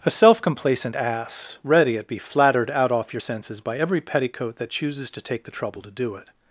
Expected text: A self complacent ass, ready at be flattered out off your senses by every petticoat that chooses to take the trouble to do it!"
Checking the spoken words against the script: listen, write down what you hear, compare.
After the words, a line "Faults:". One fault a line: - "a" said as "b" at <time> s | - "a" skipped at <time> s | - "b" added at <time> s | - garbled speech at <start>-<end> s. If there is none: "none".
A self complacent ass, ready at be flattered out off your senses by every petticoat that chooses to take the trouble to do it!"
Faults:
none